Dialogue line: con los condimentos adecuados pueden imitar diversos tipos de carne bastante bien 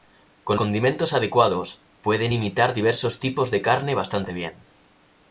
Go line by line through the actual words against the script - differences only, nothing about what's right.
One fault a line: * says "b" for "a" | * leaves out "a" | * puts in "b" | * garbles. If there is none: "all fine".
* leaves out "los"